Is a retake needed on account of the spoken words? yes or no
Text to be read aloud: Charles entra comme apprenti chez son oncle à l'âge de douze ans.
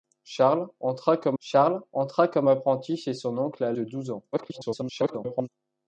yes